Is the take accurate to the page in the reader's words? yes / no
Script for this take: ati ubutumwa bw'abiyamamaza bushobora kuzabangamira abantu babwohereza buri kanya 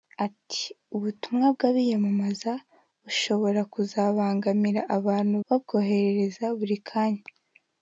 yes